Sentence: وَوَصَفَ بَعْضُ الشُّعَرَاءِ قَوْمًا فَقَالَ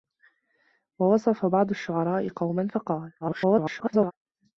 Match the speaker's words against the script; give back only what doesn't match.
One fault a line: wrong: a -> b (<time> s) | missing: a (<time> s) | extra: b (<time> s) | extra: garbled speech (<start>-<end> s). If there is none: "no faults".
extra: garbled speech (3.2-4.1 s)